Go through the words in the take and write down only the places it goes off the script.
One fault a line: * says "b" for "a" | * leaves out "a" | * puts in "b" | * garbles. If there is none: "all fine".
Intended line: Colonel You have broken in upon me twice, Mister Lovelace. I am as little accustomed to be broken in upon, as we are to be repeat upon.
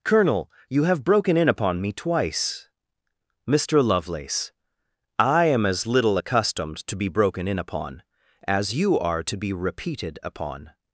* says "you" for "we"
* says "repeated" for "repeat"